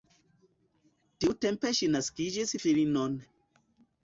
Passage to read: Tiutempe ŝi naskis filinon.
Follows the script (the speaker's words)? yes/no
yes